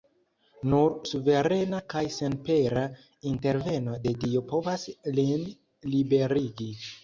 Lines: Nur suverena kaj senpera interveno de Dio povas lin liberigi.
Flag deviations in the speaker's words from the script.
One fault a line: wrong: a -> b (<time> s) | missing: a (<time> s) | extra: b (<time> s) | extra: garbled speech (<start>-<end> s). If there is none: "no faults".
no faults